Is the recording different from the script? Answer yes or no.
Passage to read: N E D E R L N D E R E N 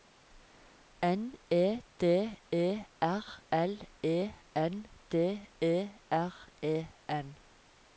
yes